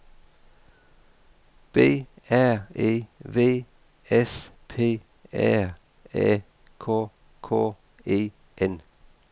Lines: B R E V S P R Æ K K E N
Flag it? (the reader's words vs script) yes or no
no